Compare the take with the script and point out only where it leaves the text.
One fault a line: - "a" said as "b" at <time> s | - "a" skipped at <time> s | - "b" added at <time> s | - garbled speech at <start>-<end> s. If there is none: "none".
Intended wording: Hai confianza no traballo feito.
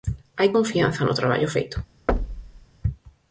none